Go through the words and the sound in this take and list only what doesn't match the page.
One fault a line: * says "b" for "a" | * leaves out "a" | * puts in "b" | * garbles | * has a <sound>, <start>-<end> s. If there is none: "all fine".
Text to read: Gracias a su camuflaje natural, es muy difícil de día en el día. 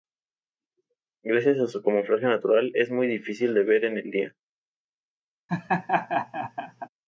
* says "ver" for "día"
* has a laugh, 5.5-6.9 s